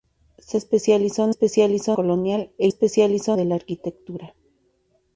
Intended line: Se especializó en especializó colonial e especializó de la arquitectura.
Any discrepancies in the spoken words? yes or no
no